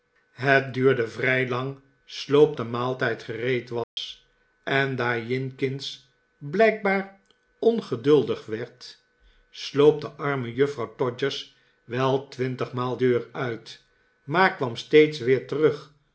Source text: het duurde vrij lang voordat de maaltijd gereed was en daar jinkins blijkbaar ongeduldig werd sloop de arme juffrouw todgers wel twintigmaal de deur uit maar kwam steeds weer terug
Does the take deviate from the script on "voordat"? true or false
true